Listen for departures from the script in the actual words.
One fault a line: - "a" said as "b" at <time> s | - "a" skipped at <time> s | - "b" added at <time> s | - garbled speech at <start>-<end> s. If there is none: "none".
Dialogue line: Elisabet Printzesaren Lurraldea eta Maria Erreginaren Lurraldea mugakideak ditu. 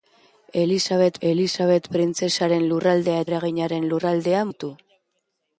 - "elisabet" added at 1.3 s
- "eta Maria" skipped at 3.2 s
- "mugakideak" skipped at 4.4 s